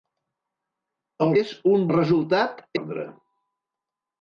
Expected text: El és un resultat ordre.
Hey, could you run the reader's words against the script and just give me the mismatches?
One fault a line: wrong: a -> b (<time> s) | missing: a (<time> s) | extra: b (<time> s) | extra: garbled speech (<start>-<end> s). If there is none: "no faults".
no faults